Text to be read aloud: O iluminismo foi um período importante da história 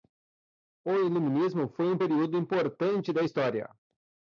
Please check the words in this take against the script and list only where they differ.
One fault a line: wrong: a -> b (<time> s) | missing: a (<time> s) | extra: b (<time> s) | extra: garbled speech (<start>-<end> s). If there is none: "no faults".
no faults